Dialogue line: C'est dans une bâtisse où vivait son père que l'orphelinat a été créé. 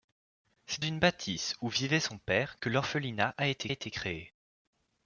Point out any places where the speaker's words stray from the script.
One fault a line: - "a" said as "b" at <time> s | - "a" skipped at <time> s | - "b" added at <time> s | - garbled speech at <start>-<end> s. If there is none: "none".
- "dans" skipped at 0.8 s
- "été" added at 3.7 s